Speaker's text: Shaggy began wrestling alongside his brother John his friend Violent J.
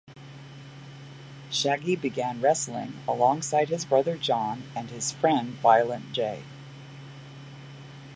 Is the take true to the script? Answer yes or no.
no